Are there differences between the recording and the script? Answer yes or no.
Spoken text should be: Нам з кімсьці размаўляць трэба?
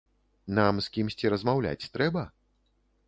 no